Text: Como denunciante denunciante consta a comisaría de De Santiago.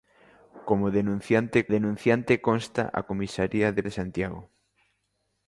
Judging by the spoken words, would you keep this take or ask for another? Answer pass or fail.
pass